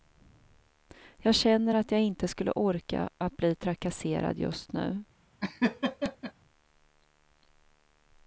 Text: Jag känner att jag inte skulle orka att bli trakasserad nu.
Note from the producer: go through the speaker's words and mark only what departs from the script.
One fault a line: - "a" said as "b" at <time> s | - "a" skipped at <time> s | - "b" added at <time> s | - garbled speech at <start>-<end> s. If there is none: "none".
- "just" added at 4.4 s